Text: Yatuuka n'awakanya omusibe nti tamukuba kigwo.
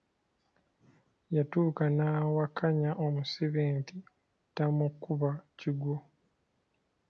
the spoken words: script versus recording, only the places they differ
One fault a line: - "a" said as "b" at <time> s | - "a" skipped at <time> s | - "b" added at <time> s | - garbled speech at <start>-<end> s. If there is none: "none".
none